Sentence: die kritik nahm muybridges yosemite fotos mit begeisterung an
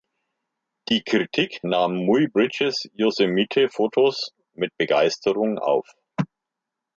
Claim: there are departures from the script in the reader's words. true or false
true